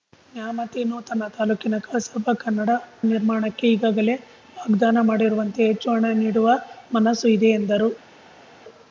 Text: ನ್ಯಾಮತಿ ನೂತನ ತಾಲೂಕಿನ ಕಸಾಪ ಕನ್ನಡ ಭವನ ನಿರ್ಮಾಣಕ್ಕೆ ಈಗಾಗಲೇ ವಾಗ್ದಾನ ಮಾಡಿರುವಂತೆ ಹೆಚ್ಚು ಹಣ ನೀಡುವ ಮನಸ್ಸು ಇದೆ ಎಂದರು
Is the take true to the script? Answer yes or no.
no